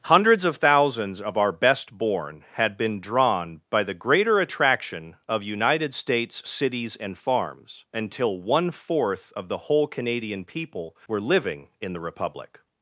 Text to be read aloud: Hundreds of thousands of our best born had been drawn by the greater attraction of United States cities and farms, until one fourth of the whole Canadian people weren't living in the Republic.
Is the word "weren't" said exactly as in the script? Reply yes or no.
no